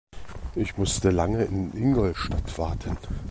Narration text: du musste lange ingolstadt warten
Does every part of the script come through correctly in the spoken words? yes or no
no